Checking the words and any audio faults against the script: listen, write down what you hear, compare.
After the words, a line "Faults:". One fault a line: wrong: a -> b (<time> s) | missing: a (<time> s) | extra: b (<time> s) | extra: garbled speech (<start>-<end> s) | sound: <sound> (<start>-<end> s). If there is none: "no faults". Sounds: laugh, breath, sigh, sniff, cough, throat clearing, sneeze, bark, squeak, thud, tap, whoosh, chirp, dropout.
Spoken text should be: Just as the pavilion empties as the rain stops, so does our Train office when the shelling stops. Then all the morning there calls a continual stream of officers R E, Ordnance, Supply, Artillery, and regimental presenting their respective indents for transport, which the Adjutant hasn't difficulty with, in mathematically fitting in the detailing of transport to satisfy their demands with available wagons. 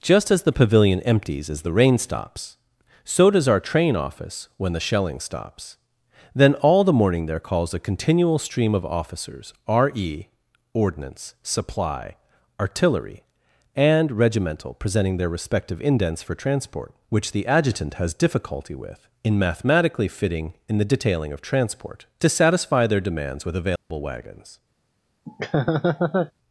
Just as the pavilion empties as the rain stops, so does our Train office when the shelling stops. Then all the morning there calls a continual stream of officers R E, Ordnance, Supply, Artillery, and regimental presenting their respective indents for transport, which the Adjutant has difficulty with, in mathematically fitting in the detailing of transport to satisfy their demands with available wagons.
Faults:
wrong: hasn't -> has (17.9 s)
sound: dropout (23.8-23.9 s)
sound: laugh (25.3-26.3 s)